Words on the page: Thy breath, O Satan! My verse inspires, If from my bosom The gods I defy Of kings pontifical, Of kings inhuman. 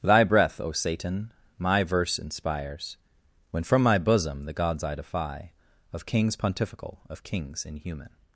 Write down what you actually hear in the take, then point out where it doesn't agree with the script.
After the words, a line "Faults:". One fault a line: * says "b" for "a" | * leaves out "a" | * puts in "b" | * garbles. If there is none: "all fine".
Thy breath, O Satan! My verse inspires, When from my bosom The gods I defy Of kings pontifical, Of kings inhuman.
Faults:
* says "When" for "If"